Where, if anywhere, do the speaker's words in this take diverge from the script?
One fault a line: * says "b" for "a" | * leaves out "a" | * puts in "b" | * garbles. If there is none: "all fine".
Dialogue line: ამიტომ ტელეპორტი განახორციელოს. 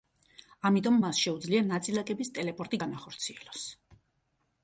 * puts in "მას შეუძლია ნაწილაკების"